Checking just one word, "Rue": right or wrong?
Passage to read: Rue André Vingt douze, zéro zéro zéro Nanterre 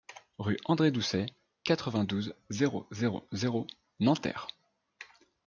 right